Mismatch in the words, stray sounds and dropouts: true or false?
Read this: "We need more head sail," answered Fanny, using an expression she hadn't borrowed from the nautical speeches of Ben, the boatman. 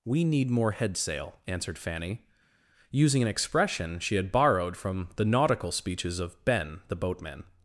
true